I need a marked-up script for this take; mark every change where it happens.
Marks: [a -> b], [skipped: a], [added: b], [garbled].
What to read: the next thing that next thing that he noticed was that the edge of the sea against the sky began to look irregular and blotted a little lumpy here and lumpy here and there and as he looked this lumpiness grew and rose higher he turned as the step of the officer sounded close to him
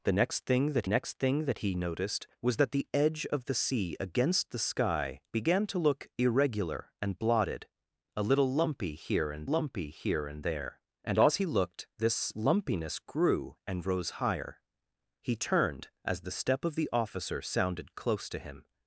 the next thing that next thing that he noticed was that the edge of the sea against the sky began to look irregular and blotted a little lumpy here and lumpy here and there and as he looked this lumpiness grew and rose higher he turned as the step of the officer sounded close to him